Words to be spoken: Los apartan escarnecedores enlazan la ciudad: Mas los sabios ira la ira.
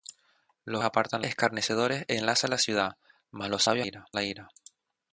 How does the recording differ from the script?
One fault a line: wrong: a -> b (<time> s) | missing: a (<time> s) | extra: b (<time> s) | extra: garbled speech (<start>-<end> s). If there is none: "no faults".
no faults